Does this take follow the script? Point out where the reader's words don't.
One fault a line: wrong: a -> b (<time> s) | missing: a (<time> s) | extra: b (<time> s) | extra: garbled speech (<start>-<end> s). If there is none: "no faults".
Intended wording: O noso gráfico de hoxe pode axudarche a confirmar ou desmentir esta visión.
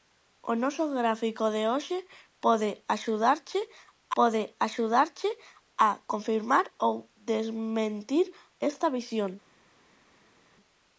extra: pode axudarche (4.2 s)